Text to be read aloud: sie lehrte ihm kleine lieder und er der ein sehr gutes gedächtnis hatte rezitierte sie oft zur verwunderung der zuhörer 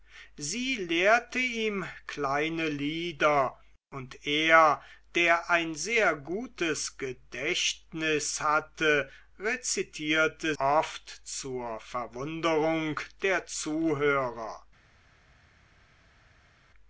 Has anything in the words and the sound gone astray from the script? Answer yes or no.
yes